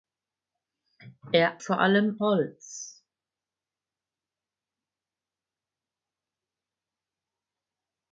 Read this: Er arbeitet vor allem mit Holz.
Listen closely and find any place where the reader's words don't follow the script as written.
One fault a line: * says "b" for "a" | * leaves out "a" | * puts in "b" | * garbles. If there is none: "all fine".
* leaves out "arbeitet"
* leaves out "mit"